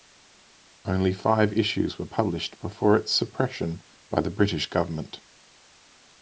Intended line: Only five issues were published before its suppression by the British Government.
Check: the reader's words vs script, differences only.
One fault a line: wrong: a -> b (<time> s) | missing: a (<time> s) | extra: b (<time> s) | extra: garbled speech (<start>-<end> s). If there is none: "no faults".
no faults